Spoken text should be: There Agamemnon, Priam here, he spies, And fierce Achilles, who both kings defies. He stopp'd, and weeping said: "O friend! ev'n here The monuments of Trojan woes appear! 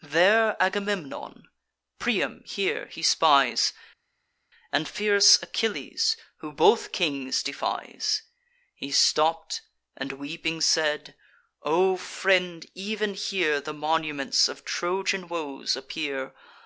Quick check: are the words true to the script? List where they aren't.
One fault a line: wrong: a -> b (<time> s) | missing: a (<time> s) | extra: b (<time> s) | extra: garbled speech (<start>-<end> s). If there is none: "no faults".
no faults